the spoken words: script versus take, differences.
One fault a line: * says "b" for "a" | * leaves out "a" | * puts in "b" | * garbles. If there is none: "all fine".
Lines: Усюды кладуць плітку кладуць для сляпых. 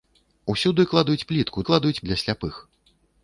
all fine